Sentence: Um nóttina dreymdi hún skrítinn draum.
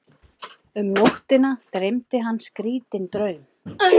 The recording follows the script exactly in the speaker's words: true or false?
false